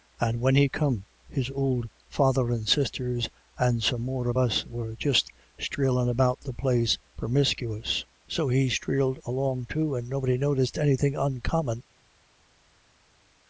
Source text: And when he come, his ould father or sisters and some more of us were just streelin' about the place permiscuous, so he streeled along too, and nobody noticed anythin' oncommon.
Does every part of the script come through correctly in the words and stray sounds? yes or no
no